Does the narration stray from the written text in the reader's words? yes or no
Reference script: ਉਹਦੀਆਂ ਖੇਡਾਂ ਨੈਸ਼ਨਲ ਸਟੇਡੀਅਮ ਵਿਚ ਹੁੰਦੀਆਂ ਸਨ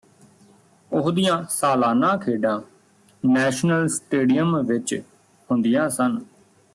yes